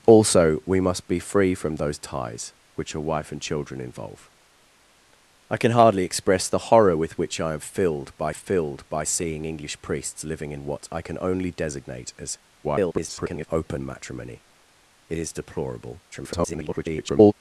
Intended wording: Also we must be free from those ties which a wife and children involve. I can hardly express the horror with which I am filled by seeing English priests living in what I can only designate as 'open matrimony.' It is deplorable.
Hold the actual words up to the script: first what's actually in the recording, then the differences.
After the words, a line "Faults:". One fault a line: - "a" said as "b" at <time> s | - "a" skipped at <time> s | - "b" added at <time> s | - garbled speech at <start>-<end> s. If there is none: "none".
Also we must be free from those ties which a wife and children involve. I can hardly express the horror with which I am filled by filled by seeing English priests living in what I can only designate as [garbled] 'open matrimony.' It is deplorable. [garbled]
Faults:
- "filled by" added at 8.3 s
- garbled speech at 12.6-13.5 s
- garbled speech at 16.1-17.3 s